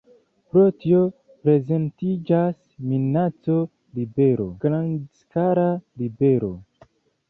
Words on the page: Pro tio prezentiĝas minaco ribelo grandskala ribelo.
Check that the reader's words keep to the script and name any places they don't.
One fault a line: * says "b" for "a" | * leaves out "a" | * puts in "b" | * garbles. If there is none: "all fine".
all fine